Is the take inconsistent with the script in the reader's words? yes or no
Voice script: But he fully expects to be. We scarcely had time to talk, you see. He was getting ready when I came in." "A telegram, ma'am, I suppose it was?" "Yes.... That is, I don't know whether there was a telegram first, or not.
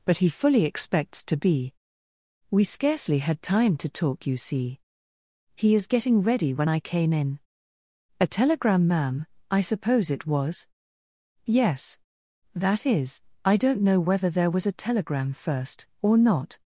yes